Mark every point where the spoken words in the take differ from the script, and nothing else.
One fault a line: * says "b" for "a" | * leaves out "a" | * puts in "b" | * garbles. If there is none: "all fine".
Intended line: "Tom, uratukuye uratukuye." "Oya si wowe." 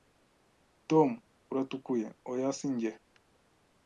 * leaves out "uratukuye"
* says "njye" for "wowe"